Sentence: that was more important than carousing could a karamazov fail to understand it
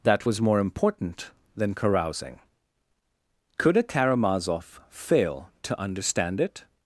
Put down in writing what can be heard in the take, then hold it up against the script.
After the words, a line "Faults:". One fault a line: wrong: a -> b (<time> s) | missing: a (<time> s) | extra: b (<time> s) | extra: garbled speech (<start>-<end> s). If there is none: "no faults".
that was more important than carousing could a karamazov fail to understand it
Faults:
no faults